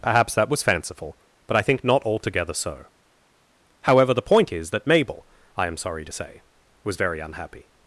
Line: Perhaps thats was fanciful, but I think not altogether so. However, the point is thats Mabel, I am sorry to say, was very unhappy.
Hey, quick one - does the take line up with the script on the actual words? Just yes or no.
no